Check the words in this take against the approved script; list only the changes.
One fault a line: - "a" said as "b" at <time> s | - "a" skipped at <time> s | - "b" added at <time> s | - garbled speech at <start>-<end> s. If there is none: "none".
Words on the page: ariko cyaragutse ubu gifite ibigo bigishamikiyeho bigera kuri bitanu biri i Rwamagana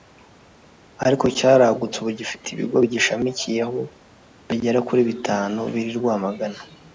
none